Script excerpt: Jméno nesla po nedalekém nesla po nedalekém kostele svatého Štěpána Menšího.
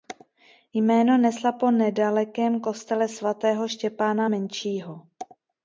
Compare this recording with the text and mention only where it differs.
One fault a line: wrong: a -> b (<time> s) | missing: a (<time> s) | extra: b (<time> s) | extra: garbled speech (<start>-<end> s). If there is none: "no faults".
missing: nesla po nedalekém (2.6 s)